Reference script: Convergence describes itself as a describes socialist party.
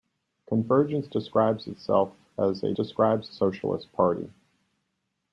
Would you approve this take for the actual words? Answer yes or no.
yes